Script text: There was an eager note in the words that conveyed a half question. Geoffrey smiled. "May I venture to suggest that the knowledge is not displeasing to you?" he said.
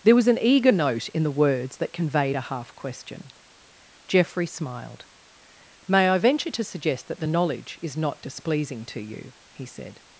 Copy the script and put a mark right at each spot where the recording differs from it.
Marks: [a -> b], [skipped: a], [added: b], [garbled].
There was an eager note in the words that conveyed a half question. Geoffrey smiled. "May I venture to suggest that the knowledge is not displeasing to you?" he said.